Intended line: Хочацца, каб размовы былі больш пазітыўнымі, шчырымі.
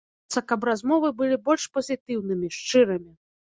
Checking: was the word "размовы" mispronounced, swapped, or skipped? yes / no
no